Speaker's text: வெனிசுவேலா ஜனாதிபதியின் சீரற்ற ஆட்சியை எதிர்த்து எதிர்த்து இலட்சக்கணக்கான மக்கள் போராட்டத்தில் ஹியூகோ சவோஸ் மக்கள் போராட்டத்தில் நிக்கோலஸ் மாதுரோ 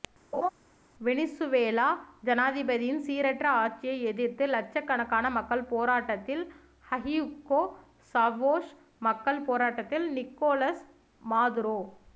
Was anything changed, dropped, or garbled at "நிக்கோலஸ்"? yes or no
no